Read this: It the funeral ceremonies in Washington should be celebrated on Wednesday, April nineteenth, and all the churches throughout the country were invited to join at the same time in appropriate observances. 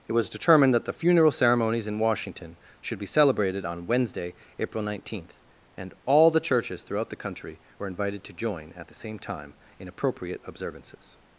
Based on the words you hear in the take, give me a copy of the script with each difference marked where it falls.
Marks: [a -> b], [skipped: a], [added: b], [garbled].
It [added: was determined that] the funeral ceremonies in Washington should be celebrated on Wednesday, April nineteenth, and all the churches throughout the country were invited to join at the same time in appropriate observances.